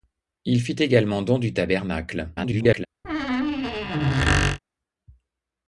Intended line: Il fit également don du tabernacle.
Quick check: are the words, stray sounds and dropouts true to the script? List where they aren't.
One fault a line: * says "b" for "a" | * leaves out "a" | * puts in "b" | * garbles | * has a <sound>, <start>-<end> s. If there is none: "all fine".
* garbles
* has a squeak, 3.0-4.6 s